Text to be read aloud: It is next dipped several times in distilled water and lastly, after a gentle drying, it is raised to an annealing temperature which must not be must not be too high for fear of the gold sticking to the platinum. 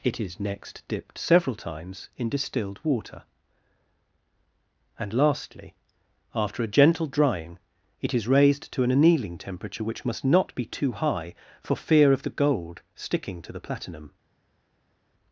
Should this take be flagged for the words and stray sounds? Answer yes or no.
yes